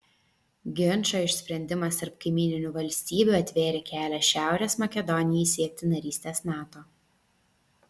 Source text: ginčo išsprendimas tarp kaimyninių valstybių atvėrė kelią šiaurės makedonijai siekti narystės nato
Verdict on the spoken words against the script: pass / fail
pass